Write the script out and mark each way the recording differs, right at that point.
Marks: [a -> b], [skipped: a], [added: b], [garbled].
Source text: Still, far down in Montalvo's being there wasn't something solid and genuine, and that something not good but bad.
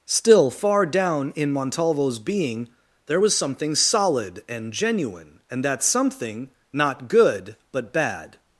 Still, far down in Montalvo's being there [wasn't -> was] something solid and genuine, and that something not good but bad.